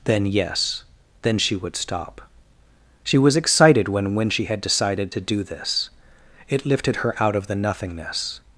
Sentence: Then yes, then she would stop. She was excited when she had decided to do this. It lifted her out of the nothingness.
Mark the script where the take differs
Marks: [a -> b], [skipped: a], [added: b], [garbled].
Then yes, then she would stop. She was excited when [added: when] she had decided to do this. It lifted her out of the nothingness.